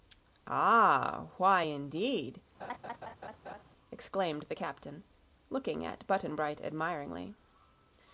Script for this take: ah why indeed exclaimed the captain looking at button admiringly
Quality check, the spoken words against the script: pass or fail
fail